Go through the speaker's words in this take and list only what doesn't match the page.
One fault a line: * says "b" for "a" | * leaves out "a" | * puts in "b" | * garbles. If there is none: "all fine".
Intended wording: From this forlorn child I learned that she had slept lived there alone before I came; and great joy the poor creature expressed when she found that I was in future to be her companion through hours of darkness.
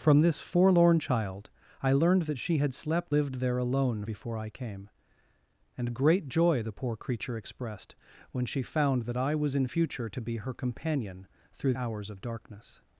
all fine